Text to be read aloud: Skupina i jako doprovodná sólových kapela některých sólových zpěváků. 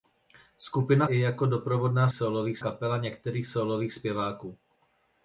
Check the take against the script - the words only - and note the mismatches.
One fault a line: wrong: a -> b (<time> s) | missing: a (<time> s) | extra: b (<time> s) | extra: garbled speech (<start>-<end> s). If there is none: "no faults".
no faults